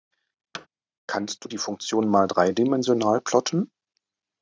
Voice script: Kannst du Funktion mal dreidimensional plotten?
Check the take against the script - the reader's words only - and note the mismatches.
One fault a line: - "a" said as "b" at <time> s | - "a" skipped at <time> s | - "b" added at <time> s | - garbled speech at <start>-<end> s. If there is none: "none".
- "die" added at 1.5 s